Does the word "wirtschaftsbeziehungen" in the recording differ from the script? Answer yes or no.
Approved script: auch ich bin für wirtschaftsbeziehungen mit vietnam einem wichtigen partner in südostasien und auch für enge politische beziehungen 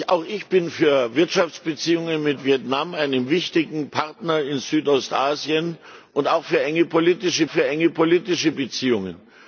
no